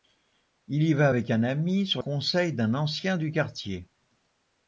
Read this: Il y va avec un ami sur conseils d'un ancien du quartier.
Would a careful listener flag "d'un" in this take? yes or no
no